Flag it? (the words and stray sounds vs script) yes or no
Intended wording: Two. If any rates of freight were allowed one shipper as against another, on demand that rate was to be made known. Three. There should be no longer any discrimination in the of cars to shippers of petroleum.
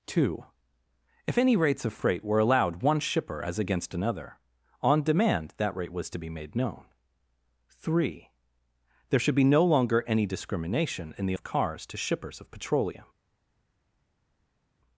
no